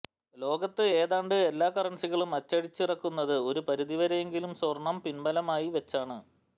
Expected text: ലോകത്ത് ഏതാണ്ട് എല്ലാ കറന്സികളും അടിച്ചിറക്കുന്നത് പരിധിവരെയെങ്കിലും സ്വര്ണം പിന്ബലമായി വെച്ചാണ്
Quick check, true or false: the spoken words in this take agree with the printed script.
false